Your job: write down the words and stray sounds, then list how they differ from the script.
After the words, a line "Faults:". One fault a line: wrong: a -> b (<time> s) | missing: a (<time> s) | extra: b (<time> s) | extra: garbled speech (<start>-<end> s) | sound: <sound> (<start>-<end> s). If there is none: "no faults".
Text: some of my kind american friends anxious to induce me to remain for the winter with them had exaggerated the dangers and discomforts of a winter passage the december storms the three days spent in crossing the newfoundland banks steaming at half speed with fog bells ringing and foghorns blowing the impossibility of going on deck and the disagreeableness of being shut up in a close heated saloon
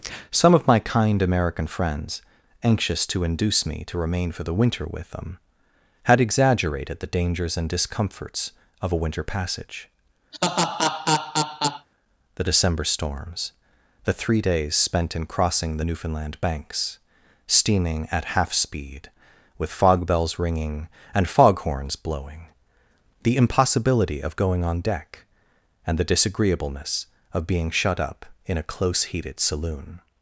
some of my kind american friends anxious to induce me to remain for the winter with them had exaggerated the dangers and discomforts of a winter passage the december storms the three days spent in crossing the newfoundland banks steaming at half speed with fog bells ringing and foghorns blowing the impossibility of going on deck and the disagreeableness of being shut up in a close heated saloon
Faults:
sound: laugh (10.3-11.9 s)